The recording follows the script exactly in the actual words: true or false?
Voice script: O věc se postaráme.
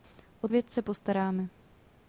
true